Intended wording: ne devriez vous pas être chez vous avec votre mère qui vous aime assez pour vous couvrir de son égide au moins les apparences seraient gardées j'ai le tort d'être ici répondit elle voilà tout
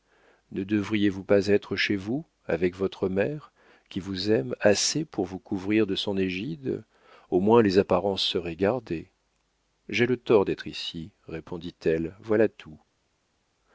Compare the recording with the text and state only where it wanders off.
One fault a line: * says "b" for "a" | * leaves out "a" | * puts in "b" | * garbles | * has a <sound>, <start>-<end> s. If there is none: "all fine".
all fine